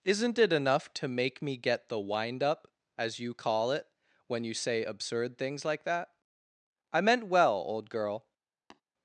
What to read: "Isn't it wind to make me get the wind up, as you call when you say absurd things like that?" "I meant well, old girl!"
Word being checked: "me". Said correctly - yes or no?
yes